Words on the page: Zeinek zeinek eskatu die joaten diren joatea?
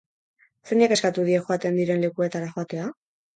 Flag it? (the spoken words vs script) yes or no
yes